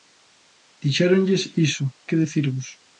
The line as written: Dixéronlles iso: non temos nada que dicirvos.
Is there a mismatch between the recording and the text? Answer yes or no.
yes